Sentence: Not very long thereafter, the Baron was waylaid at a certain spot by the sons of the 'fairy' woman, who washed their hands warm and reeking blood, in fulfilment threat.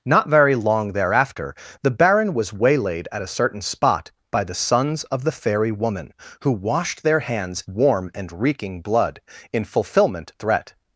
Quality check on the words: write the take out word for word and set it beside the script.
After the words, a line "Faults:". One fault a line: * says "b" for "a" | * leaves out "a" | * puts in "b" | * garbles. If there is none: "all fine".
Not very long thereafter, the Baron was waylaid at a certain spot by the sons of the 'fairy' woman, who washed their hands warm and reeking blood, in fulfilment threat.
Faults:
all fine